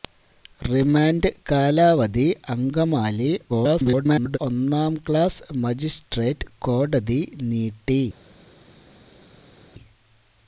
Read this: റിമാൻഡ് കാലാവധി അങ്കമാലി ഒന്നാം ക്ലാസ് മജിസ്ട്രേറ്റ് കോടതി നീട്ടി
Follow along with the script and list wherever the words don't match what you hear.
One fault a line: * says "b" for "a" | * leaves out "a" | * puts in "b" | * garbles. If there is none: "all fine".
* garbles